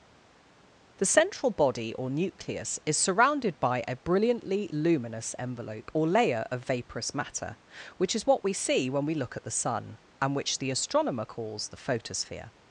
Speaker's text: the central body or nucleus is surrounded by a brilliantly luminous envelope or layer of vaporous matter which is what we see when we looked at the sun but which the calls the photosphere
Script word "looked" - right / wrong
wrong